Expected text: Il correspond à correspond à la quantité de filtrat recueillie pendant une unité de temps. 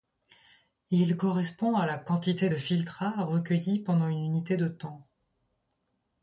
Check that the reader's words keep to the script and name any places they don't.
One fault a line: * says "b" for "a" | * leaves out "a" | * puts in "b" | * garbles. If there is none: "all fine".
* leaves out "correspond à"